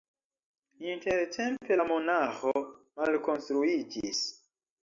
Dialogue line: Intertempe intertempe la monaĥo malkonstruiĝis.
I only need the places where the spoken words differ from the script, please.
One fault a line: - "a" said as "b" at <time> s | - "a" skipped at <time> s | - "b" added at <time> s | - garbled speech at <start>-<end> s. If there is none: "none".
- "intertempe" skipped at 1.8 s